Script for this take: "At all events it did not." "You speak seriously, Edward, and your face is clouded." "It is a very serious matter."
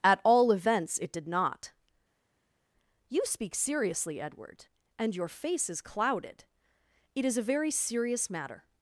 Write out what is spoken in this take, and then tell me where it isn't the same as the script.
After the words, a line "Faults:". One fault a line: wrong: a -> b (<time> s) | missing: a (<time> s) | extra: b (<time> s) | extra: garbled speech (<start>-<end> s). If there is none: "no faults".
"At all events it did not." "You speak seriously, Edward, and your face is clouded." "It is a very serious matter."
Faults:
no faults